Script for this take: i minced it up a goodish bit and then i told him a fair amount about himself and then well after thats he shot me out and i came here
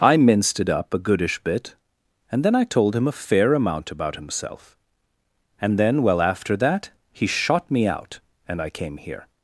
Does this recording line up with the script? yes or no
no